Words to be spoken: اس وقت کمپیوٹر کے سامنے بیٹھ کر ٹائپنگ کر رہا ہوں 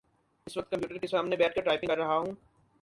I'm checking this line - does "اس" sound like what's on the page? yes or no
yes